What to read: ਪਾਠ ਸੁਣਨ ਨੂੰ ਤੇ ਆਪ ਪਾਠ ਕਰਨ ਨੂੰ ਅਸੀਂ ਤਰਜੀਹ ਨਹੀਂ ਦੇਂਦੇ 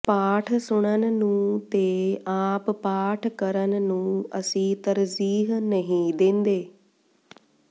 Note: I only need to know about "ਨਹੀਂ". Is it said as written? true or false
true